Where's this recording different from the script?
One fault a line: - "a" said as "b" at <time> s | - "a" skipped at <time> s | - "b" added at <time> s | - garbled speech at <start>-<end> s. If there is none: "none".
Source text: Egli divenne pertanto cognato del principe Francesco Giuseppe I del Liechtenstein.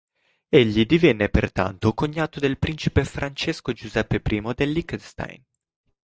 none